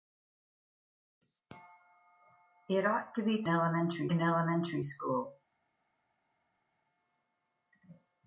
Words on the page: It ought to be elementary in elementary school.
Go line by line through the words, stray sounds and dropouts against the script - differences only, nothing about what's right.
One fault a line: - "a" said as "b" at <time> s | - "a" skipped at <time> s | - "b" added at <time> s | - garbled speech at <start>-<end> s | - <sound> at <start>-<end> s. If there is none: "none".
none